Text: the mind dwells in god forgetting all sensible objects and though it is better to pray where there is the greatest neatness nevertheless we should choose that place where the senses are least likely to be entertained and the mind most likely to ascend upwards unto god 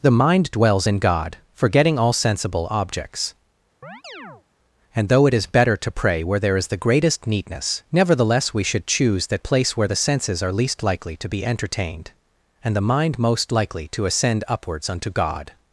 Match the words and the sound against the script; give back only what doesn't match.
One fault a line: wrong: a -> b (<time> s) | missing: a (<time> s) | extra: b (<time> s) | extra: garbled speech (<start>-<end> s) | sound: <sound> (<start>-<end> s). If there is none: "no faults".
sound: chirp (3.8-4.4 s)